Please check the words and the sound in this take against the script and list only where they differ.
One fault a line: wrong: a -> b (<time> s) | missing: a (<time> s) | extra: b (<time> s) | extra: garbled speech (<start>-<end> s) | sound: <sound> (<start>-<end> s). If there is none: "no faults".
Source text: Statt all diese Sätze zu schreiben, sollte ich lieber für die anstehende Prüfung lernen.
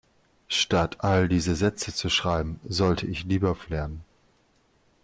missing: die anstehende Prüfung (3.7 s)